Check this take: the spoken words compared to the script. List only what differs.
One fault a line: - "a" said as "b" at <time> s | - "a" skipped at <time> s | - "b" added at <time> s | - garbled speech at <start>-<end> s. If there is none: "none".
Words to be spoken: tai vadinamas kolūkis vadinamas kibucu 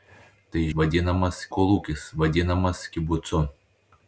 none